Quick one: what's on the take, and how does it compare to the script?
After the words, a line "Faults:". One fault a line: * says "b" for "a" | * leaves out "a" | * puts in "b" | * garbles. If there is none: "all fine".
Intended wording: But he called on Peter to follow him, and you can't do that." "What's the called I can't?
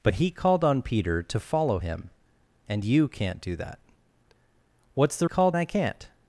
But he called on Peter to follow him, and you can't do that." "What's the called I can't?
Faults:
all fine